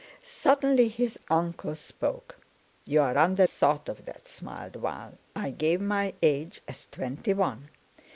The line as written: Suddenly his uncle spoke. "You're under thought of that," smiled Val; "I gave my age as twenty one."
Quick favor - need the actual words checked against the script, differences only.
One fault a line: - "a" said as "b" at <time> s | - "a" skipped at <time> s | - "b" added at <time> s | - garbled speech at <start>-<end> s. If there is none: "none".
none